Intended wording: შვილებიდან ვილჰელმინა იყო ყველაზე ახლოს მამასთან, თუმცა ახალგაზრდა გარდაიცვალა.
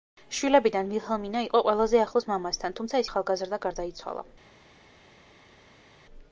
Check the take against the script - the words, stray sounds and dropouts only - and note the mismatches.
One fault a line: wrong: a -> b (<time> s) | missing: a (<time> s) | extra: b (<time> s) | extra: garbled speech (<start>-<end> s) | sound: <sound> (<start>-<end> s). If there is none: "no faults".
no faults